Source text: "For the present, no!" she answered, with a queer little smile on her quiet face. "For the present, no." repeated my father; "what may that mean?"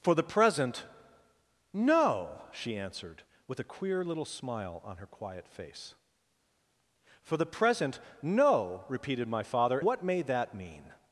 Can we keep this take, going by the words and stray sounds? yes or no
yes